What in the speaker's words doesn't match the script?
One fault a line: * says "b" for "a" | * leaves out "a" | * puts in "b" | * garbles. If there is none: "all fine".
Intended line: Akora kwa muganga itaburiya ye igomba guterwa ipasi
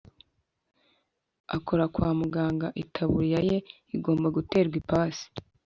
all fine